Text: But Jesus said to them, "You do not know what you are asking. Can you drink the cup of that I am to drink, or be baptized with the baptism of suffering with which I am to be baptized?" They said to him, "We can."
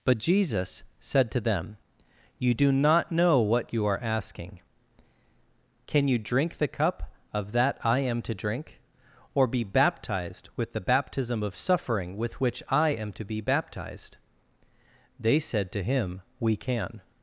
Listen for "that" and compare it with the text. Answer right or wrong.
right